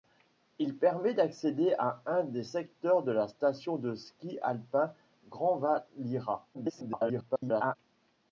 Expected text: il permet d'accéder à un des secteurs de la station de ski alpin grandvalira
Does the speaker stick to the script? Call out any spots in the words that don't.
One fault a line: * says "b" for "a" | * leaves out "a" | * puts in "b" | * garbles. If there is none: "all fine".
* garbles